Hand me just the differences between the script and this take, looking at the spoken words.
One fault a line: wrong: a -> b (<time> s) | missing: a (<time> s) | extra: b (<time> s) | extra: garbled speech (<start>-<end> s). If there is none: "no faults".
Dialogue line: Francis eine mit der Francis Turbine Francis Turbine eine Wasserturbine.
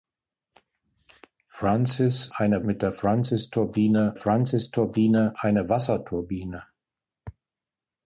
no faults